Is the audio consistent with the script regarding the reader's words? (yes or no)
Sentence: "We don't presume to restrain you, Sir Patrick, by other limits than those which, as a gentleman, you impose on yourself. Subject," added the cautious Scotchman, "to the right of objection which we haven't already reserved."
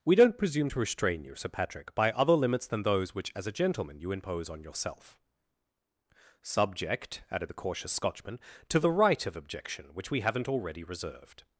yes